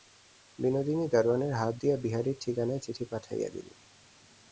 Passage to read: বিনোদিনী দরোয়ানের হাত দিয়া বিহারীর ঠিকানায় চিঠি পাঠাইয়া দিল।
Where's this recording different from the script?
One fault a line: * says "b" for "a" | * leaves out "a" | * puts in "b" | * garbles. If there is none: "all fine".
all fine